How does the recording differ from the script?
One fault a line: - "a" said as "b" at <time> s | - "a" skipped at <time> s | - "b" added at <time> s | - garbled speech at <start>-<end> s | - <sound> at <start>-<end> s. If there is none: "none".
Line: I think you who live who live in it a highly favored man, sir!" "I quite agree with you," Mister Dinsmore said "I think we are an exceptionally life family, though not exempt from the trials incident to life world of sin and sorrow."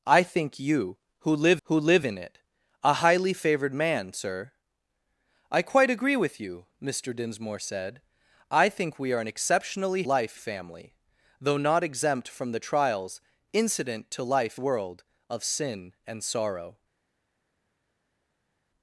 none